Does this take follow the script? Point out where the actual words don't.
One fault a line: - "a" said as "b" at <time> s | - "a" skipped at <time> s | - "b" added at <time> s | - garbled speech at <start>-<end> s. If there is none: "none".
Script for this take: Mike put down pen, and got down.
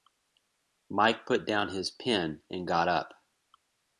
- "his" added at 1.7 s
- "down" said as "up" at 2.9 s